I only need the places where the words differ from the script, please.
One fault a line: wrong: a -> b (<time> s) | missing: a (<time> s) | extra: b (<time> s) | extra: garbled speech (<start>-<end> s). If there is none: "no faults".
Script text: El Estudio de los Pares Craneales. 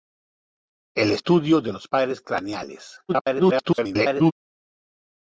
extra: garbled speech (3.1-4.3 s)